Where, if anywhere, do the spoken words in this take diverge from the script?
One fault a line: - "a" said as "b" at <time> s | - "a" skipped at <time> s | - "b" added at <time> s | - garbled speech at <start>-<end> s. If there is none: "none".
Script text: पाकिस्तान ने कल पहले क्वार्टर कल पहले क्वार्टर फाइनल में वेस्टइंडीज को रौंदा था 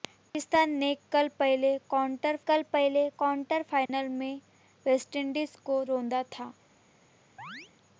none